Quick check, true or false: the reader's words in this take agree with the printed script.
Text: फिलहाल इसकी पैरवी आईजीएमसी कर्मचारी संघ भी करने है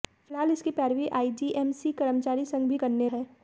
true